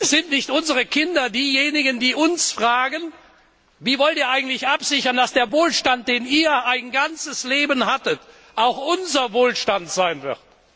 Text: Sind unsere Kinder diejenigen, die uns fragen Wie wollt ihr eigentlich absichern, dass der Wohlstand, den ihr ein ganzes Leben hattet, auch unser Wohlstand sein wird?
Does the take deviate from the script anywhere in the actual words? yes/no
yes